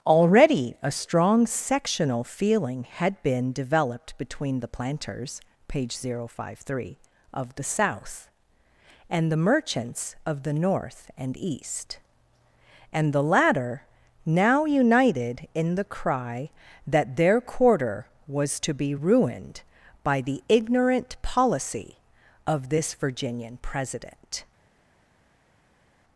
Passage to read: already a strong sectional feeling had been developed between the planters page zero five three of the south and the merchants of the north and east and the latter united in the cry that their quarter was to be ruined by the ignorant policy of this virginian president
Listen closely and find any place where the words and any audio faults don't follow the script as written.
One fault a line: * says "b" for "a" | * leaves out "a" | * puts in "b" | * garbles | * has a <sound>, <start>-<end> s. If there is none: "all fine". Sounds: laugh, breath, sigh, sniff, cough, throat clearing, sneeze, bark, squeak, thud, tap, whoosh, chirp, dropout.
* puts in "now"